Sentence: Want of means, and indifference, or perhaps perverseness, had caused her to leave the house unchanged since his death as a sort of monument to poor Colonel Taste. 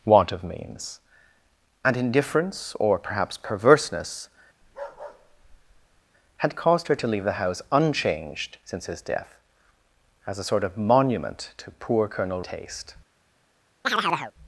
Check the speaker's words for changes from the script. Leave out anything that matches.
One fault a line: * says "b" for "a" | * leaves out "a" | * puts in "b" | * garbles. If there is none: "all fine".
all fine